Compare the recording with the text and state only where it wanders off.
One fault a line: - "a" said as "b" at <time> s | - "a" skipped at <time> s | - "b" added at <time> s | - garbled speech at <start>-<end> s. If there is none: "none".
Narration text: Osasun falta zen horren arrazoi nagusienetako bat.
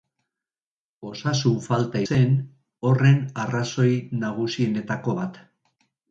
none